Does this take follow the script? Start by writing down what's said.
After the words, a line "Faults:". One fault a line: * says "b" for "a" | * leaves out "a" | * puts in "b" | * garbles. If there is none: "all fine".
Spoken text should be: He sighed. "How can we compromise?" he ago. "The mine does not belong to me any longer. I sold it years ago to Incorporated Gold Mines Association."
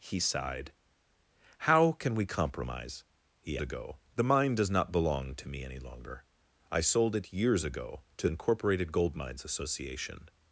He sighed. "How can we compromise?" he ago. "The mine does not belong to me any longer. I sold it years ago to Incorporated Gold Mines Association."
Faults:
all fine